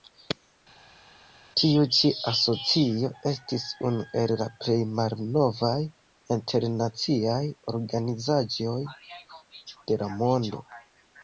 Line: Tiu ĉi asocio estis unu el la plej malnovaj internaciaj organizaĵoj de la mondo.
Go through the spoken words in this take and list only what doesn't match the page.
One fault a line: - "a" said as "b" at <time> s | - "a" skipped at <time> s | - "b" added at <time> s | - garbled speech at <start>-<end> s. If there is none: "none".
none